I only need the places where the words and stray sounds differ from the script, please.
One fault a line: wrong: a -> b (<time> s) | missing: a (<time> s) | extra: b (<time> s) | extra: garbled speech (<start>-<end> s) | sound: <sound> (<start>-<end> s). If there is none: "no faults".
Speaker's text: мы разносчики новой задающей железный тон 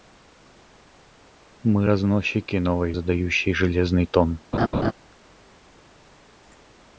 sound: laugh (4.5-4.9 s)